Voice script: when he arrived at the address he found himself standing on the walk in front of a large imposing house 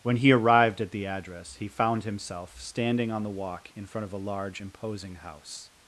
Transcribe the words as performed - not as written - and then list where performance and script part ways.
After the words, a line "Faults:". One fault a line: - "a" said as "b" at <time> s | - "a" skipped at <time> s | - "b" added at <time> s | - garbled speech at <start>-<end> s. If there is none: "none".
when he arrived at the address he found himself standing on the walk in front of a large imposing house
Faults:
none